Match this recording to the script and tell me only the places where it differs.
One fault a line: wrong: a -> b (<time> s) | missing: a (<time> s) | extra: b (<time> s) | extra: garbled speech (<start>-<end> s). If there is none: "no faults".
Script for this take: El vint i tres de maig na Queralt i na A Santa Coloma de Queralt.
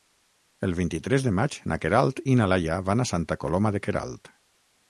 extra: Laia van (2.5 s)